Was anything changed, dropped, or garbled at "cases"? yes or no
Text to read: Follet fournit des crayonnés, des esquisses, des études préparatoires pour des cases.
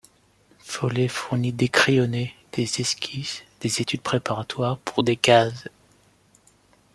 no